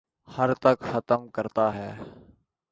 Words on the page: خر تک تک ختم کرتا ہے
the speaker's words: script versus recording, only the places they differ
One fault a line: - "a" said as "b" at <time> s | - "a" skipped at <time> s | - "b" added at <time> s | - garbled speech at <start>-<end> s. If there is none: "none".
- "تک" skipped at 0.8 s